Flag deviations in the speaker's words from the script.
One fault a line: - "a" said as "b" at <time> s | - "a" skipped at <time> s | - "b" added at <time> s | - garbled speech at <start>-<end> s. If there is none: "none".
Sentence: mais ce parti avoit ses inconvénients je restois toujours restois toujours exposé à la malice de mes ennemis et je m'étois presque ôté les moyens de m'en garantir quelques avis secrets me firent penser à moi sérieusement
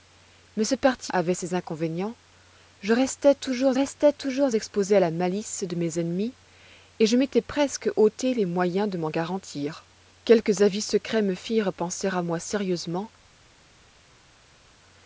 none